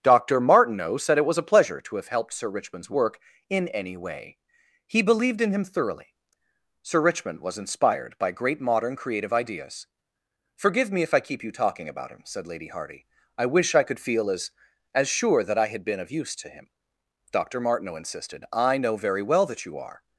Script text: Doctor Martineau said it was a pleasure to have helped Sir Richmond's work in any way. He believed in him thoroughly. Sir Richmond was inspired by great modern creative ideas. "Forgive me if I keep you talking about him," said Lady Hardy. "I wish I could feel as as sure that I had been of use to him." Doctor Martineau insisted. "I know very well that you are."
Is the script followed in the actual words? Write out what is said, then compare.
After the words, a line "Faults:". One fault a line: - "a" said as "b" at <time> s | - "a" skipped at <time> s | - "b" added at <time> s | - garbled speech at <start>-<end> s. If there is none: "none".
Doctor Martineau said it was a pleasure to have helped Sir Richmond's work in any way. He believed in him thoroughly. Sir Richmond was inspired by great modern creative ideas. "Forgive me if I keep you talking about him," said Lady Hardy. "I wish I could feel as as sure that I had been of use to him." Doctor Martineau insisted. "I know very well that you are."
Faults:
none